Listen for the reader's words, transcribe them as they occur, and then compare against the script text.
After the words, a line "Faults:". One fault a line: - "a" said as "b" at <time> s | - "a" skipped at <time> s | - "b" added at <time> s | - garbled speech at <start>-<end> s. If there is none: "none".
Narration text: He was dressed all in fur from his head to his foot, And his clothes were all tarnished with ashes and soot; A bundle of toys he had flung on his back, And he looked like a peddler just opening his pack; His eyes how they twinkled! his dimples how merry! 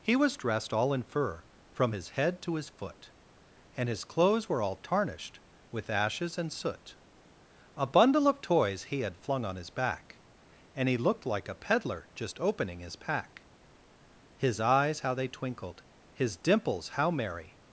He was dressed all in fur from his head to his foot, And his clothes were all tarnished with ashes and soot; A bundle of toys he had flung on his back, And he looked like a peddler just opening his pack; His eyes how they twinkled! his dimples how merry!
Faults:
none